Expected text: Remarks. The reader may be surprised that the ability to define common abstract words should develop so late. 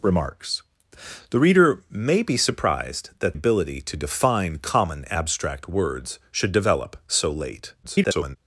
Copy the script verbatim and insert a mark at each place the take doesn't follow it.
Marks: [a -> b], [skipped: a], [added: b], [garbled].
Remarks. The reader may be surprised that [skipped: the] ability to define common abstract words should develop so late. [garbled]